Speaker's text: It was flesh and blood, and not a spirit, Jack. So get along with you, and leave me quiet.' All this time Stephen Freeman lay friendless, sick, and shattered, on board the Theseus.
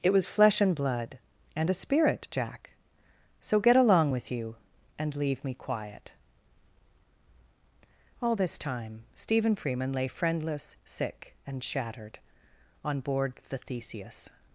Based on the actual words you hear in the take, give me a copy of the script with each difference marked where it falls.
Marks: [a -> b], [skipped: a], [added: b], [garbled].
It was flesh and blood, and [skipped: not] a spirit, Jack. So get along with you, and leave me quiet.' All this time Stephen Freeman lay friendless, sick, and shattered, on board the Theseus.